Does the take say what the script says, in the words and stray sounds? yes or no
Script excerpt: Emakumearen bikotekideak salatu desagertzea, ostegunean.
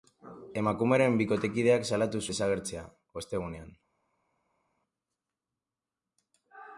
yes